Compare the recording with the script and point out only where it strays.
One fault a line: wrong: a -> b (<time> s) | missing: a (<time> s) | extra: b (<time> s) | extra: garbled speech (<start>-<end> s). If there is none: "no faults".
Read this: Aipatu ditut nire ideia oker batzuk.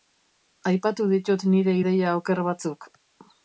no faults